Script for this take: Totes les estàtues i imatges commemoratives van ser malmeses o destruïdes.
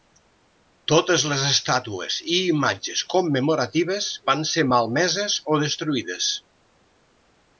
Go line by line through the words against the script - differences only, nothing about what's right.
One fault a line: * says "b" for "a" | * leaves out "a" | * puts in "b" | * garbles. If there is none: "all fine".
all fine